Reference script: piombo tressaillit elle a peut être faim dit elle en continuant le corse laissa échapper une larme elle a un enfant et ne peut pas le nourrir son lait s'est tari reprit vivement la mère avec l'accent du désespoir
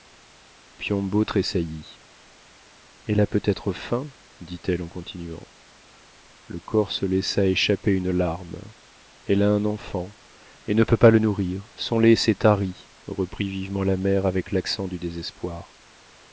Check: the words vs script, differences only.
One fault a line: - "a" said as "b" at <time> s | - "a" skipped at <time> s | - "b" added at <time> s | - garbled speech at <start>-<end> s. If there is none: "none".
none